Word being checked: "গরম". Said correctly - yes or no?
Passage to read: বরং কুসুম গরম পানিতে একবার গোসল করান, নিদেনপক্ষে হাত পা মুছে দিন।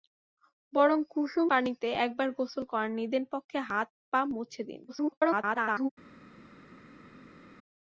no